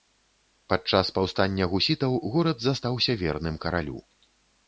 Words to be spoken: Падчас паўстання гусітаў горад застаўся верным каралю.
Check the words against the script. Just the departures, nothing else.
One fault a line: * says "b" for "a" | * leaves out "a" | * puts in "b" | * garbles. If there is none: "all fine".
all fine